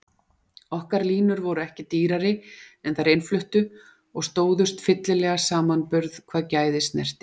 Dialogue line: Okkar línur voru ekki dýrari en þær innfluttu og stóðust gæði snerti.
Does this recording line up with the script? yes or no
no